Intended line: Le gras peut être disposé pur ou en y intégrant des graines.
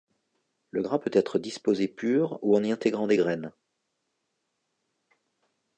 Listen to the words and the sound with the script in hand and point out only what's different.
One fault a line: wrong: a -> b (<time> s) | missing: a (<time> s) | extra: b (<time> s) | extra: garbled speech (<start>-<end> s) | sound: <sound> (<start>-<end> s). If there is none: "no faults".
no faults